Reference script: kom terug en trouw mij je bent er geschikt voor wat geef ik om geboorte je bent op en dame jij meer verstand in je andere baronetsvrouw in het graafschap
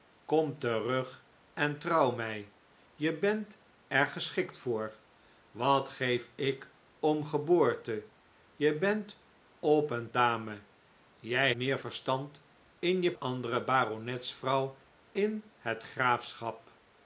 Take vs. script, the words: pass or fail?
pass